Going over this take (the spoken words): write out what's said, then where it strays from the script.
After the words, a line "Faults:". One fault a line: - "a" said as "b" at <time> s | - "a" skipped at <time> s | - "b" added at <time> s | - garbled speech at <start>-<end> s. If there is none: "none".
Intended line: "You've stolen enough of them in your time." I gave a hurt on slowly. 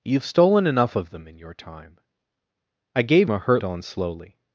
"You've stolen enough of them in your time." I gave a hurt on slowly.
Faults:
none